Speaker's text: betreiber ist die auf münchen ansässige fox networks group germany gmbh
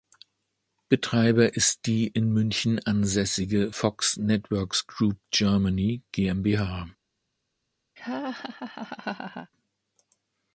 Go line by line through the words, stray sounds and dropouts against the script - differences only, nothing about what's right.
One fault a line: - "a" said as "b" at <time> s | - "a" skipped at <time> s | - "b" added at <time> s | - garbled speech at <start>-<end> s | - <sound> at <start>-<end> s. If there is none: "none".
- "auf" said as "in" at 2.1 s
- laugh at 8.0-9.5 s